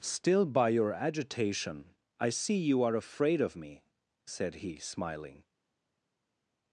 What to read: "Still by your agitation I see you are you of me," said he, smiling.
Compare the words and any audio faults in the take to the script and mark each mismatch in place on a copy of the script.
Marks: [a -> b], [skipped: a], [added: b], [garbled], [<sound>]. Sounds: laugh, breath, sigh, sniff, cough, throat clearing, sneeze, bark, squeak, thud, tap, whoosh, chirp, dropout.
"Still by your agitation I see you are [you -> afraid] of me," said he, smiling.